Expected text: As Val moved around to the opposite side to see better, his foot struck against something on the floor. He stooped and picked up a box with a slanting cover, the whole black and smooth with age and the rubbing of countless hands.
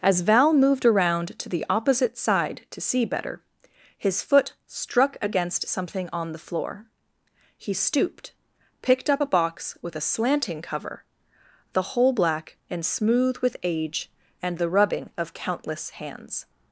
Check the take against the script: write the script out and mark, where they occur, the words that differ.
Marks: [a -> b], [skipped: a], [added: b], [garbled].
As Val moved around to the opposite side to see better, his foot struck against something on the floor. He stooped [skipped: and] picked up a box with a slanting cover, the whole black and smooth with age and the rubbing of countless hands.